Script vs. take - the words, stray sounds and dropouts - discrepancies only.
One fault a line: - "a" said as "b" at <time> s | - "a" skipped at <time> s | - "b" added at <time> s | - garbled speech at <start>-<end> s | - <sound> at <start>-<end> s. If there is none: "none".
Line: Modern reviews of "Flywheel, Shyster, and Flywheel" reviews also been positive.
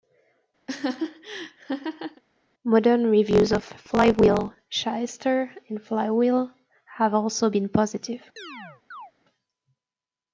- laugh at 0.7-2.2 s
- "reviews" said as "have" at 7.0 s
- chirp at 8.4-9.1 s